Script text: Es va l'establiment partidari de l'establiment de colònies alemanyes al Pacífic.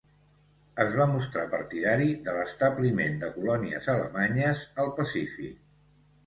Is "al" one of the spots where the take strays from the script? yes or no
no